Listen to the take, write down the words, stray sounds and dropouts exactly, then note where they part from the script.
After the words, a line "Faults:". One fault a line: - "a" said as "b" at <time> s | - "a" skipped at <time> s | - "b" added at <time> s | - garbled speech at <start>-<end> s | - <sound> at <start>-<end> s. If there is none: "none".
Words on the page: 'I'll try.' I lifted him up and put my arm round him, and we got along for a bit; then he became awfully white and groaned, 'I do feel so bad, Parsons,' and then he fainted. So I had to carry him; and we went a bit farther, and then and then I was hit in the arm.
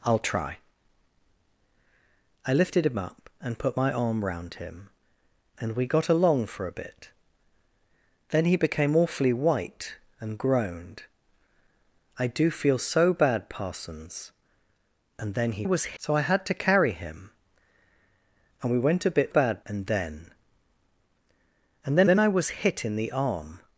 'I'll try.' I lifted him up and put my arm round him, and we got along for a bit; then he became awfully white and groaned, 'I do feel so bad, Parsons,' and then he was. So I had to carry him; and we went a bit bad, and then and then then I was hit in the arm.
Faults:
- "fainted" said as "was" at 15.6 s
- "farther" said as "bad" at 19.3 s
- "then" added at 22.1 s